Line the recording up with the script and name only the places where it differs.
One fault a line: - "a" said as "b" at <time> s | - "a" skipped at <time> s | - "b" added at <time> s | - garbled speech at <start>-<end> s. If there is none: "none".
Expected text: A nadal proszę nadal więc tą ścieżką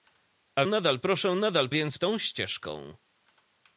none